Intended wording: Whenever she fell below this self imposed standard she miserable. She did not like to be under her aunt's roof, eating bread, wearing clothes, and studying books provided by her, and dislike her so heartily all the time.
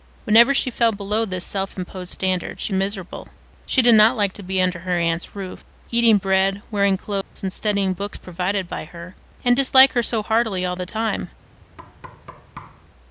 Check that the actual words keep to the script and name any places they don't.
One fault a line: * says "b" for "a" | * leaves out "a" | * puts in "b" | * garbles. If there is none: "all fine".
all fine